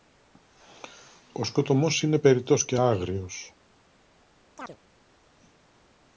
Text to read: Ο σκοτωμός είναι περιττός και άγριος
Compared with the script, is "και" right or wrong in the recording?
right